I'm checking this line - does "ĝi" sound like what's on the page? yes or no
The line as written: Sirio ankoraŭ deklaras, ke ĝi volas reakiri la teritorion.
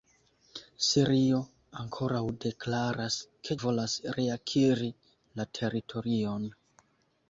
no